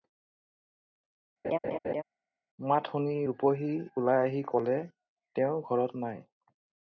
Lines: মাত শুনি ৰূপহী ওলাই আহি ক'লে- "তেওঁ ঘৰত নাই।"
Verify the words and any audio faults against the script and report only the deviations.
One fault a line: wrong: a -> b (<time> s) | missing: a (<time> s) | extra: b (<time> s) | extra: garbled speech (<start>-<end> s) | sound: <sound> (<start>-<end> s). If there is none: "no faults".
sound: laugh (1.4-2.0 s)